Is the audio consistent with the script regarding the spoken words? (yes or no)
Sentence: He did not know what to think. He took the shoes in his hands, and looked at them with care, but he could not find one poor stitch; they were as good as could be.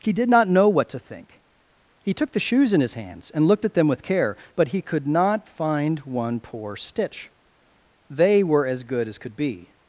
yes